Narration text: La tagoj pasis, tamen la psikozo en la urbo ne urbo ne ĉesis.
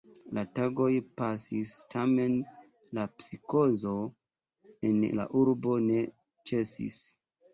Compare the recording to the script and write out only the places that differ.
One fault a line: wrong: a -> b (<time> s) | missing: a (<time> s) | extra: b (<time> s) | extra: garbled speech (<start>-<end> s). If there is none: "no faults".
missing: urbo ne (6.0 s)